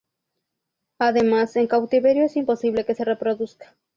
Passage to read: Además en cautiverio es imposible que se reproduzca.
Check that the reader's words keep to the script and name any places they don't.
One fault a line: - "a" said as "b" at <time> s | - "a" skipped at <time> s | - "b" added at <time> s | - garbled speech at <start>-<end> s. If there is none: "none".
none